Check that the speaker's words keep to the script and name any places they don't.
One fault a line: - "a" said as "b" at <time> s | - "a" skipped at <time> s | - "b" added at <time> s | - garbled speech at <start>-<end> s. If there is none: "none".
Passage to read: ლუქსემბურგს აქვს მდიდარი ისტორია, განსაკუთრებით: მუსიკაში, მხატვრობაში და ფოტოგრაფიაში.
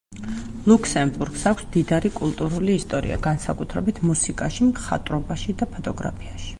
- "კულტურული" added at 2.2 s